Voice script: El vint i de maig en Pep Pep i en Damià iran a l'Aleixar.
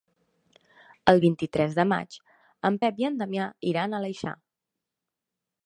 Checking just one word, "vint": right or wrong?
right